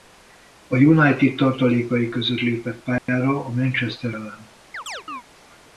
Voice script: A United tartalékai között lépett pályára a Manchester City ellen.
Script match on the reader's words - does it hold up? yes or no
no